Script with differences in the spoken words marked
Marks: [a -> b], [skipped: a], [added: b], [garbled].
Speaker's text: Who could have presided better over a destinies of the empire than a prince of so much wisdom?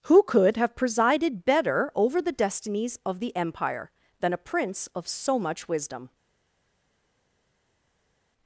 Who could have presided better over [a -> the] destinies of the empire than a prince of so much wisdom?